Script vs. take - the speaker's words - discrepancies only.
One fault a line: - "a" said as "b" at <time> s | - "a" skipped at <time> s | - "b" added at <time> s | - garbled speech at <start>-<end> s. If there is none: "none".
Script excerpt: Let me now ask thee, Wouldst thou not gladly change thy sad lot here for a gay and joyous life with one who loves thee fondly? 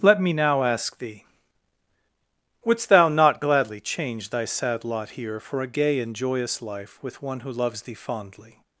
none